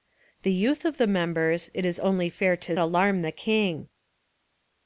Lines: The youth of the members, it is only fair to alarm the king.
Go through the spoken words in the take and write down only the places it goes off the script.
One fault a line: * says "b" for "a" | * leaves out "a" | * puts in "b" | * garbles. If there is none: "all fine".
all fine